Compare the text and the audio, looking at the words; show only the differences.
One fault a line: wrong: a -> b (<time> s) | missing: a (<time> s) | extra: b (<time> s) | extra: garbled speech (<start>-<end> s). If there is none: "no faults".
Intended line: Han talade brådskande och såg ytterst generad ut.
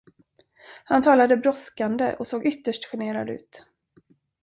no faults